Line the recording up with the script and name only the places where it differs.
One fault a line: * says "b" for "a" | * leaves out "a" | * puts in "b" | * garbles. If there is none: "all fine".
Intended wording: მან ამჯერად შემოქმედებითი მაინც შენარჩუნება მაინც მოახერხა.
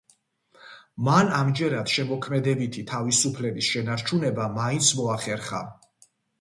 * says "თავისუფლების" for "მაინც"